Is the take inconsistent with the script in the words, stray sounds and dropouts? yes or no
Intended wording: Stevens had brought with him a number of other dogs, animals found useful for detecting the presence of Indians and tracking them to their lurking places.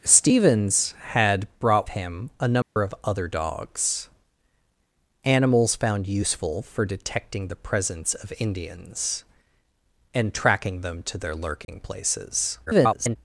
yes